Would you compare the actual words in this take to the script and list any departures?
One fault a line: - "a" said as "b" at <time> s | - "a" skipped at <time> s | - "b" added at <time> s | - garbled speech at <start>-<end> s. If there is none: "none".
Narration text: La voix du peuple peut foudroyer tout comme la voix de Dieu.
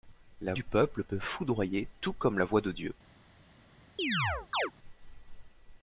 - "voix" skipped at 0.6 s